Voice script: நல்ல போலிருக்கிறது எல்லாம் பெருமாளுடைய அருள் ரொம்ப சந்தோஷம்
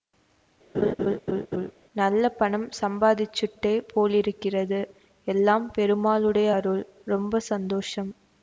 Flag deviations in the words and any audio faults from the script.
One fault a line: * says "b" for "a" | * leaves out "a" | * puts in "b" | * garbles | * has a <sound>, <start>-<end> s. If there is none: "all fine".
* has a laugh, 0.7-1.7 s
* puts in "பணம் சம்பாதிச்சுட்டே"